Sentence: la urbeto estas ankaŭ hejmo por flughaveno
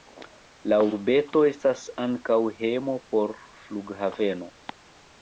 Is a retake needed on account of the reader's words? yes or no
no